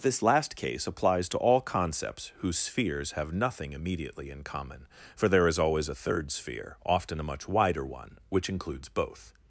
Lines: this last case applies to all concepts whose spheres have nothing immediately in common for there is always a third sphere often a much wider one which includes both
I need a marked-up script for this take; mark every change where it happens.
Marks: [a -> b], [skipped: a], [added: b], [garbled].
this last case applies to all concepts whose spheres have nothing immediately in common for there is always a third sphere often a much wider one which includes both